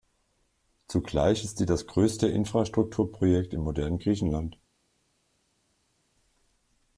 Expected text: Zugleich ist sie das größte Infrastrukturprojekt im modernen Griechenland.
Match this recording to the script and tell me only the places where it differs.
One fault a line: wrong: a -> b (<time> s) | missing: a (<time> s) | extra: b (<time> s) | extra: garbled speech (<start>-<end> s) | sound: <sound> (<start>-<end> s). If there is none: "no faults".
no faults